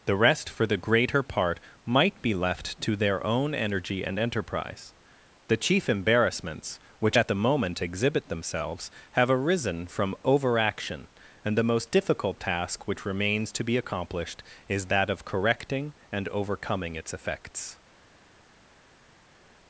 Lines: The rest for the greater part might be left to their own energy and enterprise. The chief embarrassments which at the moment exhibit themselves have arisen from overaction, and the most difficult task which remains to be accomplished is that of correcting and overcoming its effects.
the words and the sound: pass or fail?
pass